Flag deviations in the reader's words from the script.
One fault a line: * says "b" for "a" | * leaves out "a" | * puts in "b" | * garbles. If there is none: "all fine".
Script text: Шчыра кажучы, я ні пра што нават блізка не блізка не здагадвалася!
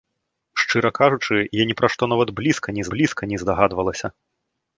all fine